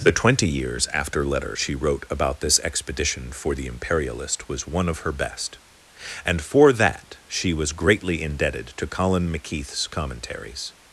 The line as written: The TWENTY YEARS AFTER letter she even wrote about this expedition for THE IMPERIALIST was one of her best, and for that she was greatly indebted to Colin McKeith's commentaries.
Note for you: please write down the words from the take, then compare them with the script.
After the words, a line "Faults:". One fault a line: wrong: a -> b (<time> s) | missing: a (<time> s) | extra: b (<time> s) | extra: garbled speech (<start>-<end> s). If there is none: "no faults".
The TWENTY YEARS AFTER letter she wrote about this expedition for THE IMPERIALIST was one of her best, and for that she was greatly indebted to Colin McKeith's commentaries.
Faults:
missing: even (1.7 s)